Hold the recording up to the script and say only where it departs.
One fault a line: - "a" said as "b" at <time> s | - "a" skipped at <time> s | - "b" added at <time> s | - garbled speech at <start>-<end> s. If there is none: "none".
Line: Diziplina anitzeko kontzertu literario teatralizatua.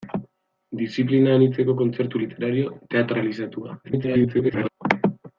- garbled speech at 3.8-4.7 s